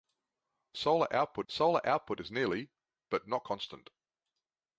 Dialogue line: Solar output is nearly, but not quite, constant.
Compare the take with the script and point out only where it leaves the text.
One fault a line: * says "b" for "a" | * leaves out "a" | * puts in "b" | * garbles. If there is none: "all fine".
* puts in "solar output"
* leaves out "quite"